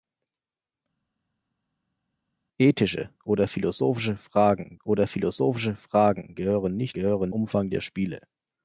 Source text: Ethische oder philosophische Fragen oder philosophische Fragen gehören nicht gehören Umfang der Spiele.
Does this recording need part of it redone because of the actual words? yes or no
no